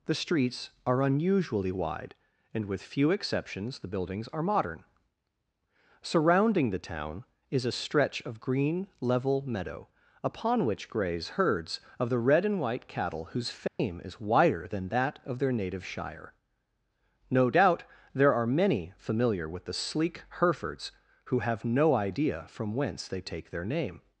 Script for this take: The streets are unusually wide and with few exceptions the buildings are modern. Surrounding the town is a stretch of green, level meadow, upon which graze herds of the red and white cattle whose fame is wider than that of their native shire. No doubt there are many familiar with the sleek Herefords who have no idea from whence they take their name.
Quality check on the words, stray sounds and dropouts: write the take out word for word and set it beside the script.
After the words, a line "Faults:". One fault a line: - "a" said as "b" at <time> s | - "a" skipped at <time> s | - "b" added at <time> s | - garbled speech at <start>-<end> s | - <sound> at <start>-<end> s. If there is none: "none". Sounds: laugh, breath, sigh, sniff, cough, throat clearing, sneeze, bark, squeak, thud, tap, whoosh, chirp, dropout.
The streets are unusually wide and with few exceptions the buildings are modern. Surrounding the town is a stretch of green, level meadow, upon which graze herds of the red and white cattle whose fame is wider than that of their native shire. No doubt there are many familiar with the sleek Herefords who have no idea from whence they take their name.
Faults:
- dropout at 13.7-13.8 s